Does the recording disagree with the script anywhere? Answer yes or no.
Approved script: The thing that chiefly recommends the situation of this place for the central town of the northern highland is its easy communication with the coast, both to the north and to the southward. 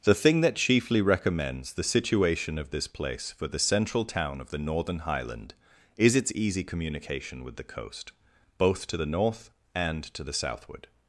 no